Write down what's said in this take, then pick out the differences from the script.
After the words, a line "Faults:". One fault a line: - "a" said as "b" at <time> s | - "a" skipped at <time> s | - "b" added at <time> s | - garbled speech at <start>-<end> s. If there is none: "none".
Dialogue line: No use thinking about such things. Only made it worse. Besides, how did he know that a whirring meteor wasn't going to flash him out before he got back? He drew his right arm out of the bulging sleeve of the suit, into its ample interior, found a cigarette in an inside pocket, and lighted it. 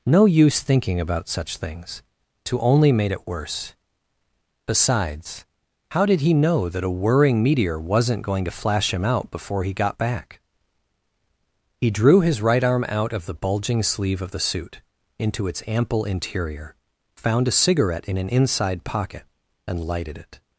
No use thinking about such things. to Only made it worse. Besides, how did he know that a whirring meteor wasn't going to flash him out before he got back? He drew his right arm out of the bulging sleeve of the suit, into its ample interior, found a cigarette in an inside pocket, and lighted it.
Faults:
- "to" added at 2.5 s